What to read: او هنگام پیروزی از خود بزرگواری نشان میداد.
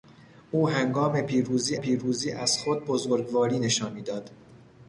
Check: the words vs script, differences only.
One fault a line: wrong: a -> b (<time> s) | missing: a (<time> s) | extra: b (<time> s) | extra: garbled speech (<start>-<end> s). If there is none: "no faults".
extra: پیروزی (1.8 s)